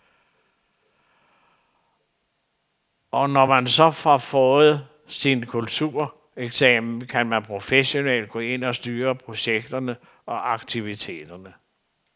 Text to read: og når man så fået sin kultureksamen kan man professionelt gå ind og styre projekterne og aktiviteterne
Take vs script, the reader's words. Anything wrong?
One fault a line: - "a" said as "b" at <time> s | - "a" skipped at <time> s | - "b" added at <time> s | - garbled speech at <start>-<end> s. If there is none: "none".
- "har" added at 3.9 s